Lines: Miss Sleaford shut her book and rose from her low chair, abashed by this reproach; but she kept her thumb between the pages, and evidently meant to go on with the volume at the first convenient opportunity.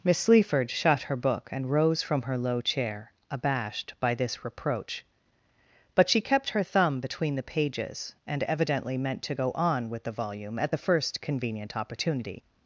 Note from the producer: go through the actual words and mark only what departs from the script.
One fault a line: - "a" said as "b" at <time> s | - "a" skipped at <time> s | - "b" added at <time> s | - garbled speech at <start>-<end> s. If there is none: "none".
none